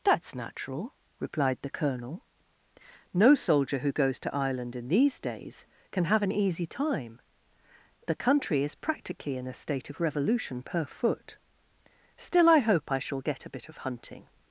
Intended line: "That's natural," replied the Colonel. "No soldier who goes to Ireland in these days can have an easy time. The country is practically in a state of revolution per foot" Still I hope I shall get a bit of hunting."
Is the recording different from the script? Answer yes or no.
no